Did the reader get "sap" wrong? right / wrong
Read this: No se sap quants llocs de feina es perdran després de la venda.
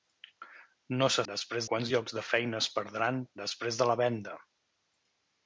wrong